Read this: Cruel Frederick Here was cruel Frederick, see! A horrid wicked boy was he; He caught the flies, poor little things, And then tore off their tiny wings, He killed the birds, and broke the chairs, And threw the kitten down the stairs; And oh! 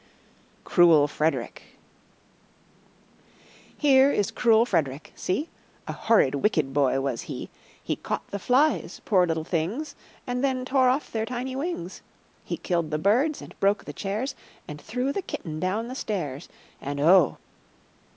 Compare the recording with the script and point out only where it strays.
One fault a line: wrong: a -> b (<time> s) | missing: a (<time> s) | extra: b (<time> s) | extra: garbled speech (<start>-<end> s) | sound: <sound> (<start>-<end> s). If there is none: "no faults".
wrong: was -> is (4.1 s)